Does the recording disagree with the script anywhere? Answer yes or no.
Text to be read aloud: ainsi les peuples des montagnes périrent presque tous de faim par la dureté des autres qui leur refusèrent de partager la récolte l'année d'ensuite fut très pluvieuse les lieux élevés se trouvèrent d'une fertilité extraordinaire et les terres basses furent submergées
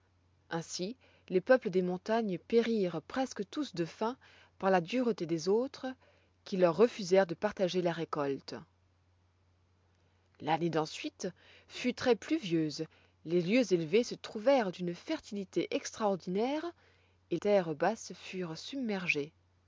yes